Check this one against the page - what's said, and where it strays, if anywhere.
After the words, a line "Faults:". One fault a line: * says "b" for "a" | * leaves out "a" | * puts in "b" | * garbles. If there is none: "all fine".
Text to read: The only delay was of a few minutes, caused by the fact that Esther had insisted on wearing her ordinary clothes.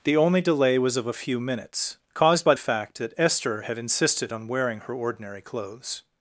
The only delay was of a few minutes, caused by fact that Esther had insisted on wearing her ordinary clothes.
Faults:
* leaves out "the"